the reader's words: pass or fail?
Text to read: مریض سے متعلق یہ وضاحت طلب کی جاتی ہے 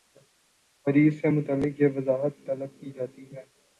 pass